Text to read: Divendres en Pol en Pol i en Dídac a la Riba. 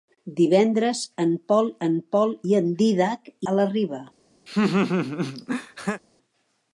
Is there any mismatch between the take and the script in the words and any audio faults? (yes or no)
yes